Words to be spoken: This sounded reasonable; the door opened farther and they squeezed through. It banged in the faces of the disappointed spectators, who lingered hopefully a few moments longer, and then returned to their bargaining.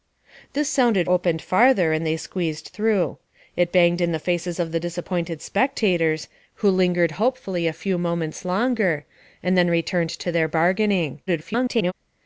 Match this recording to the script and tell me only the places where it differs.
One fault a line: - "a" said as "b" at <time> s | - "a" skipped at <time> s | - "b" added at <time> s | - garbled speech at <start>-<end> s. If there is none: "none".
- "reasonable the door" skipped at 1.1 s
- garbled speech at 11.3-11.9 s